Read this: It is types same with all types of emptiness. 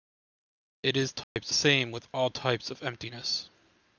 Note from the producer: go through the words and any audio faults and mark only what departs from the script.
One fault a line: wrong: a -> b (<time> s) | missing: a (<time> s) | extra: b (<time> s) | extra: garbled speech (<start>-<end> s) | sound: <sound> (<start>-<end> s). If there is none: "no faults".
sound: dropout (1.2-1.4 s)